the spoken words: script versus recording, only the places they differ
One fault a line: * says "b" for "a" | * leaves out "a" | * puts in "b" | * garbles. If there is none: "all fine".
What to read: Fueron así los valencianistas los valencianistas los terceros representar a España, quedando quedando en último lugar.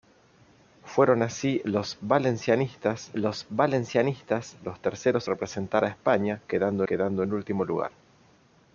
all fine